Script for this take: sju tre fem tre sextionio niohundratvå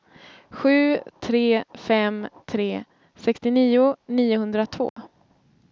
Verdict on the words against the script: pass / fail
pass